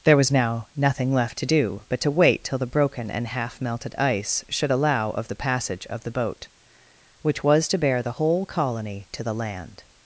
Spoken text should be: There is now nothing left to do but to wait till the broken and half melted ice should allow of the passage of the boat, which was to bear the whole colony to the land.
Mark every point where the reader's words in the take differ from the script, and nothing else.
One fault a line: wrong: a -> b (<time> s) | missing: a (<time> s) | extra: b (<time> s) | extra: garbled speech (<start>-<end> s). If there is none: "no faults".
wrong: is -> was (0.2 s)